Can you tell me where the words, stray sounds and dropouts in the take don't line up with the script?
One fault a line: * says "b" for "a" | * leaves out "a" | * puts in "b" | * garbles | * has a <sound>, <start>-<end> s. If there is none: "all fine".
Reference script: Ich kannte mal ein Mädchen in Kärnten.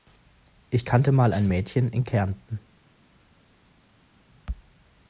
all fine